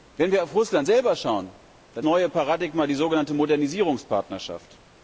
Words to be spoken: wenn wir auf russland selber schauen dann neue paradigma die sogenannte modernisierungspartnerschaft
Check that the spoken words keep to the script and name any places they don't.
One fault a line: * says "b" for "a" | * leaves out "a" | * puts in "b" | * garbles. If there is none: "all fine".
all fine